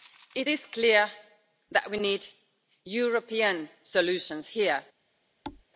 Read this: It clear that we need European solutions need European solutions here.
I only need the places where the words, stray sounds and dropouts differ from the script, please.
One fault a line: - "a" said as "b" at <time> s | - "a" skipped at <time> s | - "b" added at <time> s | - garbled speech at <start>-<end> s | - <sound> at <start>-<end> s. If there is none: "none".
- "is" added at 0.5 s
- "need European solutions" skipped at 4.5 s
- thud at 5.4-5.6 s